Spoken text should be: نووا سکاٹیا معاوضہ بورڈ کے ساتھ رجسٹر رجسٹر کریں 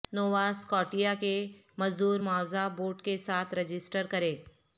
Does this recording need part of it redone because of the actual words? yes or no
yes